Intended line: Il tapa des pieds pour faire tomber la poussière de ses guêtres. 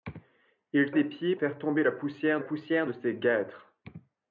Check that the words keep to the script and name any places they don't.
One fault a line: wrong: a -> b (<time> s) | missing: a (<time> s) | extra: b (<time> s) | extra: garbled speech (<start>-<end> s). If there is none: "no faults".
missing: tapa (0.9 s)
missing: pour (1.3 s)
extra: poussière (2.4 s)